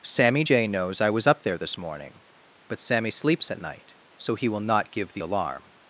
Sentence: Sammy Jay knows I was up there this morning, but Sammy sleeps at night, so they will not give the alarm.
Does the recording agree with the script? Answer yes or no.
no